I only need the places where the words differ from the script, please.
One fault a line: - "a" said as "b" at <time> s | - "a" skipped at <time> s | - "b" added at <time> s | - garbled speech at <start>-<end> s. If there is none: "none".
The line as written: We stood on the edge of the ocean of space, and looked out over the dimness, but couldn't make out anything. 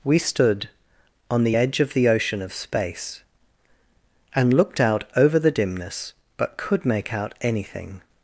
- "couldn't" said as "could" at 6.6 s